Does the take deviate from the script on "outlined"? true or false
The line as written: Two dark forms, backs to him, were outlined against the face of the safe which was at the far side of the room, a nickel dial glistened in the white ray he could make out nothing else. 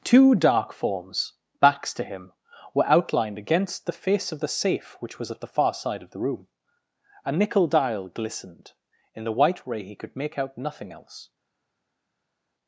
false